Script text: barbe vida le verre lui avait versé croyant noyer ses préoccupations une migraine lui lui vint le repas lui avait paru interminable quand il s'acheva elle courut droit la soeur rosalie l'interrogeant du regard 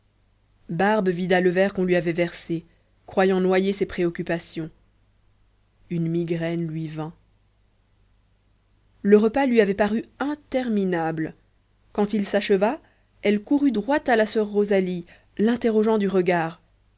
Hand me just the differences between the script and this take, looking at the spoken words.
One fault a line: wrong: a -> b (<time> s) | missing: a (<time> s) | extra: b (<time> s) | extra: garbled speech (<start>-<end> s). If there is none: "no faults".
extra: qu'on (1.7 s)
missing: lui (6.9 s)
extra: à (14.1 s)